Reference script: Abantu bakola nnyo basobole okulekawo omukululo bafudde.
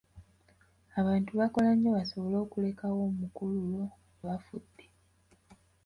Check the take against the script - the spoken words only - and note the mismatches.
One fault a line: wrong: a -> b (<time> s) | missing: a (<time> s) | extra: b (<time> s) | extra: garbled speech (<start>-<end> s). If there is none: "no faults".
no faults